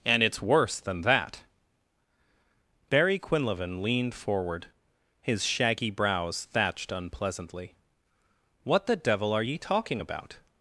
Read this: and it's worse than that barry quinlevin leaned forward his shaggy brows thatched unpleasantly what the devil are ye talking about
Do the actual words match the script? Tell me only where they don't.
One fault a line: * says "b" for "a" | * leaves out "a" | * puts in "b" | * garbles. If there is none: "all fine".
all fine